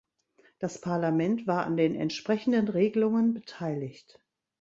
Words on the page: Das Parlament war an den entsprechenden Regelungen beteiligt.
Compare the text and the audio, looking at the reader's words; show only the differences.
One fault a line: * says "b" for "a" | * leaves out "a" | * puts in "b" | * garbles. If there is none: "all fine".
all fine